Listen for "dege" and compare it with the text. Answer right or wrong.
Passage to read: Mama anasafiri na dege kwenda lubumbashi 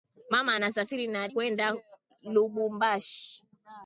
wrong